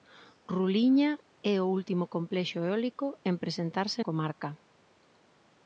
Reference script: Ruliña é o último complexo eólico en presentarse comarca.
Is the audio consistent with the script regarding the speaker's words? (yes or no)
yes